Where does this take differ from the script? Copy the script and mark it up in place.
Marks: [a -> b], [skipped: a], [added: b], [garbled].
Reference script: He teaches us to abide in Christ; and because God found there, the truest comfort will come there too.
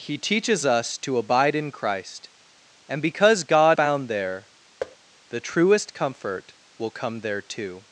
He teaches us to abide in Christ; and because God found there, the truest comfort will come there too.